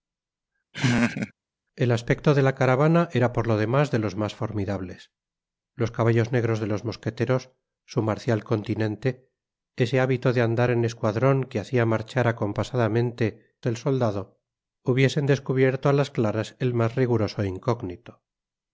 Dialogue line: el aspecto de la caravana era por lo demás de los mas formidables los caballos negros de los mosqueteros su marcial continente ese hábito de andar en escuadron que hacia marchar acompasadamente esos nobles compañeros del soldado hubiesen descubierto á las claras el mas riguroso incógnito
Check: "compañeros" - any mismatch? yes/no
yes